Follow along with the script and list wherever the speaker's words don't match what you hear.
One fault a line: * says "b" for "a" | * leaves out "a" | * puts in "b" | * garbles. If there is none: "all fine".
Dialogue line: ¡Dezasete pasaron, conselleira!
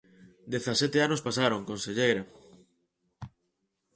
* puts in "anos"